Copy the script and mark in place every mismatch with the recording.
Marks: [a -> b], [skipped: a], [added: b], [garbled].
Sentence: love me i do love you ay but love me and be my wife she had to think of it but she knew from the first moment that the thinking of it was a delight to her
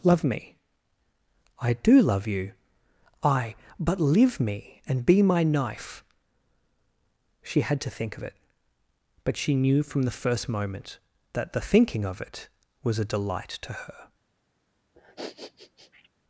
love me i do love you ay but [love -> live] me and be my [wife -> knife] she had to think of it but she knew from the first moment that the thinking of it was a delight to her